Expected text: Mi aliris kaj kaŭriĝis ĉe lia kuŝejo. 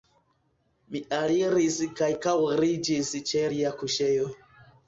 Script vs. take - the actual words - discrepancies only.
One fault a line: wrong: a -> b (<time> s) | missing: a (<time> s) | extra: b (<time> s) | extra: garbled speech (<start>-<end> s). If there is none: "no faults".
no faults